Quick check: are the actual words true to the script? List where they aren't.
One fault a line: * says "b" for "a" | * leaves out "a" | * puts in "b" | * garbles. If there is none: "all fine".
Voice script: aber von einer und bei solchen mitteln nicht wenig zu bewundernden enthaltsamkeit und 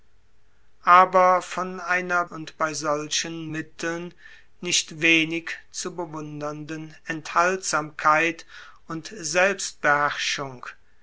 all fine